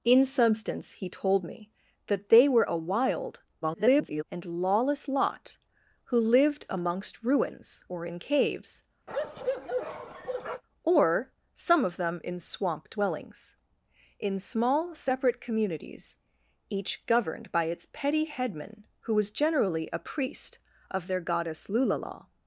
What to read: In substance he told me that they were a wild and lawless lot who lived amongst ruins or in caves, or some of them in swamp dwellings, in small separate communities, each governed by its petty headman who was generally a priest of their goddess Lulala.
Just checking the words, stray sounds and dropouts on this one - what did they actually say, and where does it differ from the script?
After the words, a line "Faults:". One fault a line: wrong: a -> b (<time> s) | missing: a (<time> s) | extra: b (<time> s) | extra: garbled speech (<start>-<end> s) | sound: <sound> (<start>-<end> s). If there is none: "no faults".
In substance he told me that they were a wild [garbled] and lawless lot who lived amongst ruins or in caves, or some of them in swamp dwellings, in small separate communities, each governed by its petty headman who was generally a priest of their goddess Lulala.
Faults:
extra: garbled speech (3.6-4.2 s)
sound: bark (9.1-10.6 s)